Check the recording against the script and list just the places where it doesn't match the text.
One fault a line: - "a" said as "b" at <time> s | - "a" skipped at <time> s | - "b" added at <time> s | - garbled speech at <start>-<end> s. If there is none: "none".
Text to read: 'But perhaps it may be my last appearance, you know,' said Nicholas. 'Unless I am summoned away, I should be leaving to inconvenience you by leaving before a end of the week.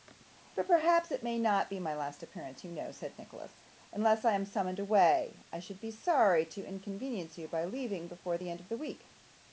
- "not" added at 1.4 s
- "leaving" said as "sorry" at 5.9 s
- "a" said as "the" at 8.4 s